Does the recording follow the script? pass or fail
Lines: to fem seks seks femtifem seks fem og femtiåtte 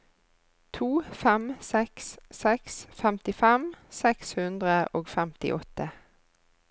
fail